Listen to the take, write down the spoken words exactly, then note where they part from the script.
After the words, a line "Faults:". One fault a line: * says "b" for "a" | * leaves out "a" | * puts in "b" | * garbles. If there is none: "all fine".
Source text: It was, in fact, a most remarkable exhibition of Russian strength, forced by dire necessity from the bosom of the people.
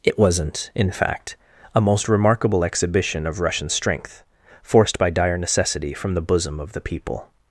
It wasn't, in fact, a most remarkable exhibition of Russian strength, forced by dire necessity from the bosom of the people.
Faults:
* says "wasn't" for "was"